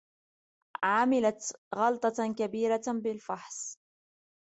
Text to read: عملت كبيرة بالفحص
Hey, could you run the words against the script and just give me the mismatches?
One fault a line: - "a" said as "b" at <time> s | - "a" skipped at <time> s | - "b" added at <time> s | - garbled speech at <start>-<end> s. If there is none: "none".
- "غلطة" added at 1.8 s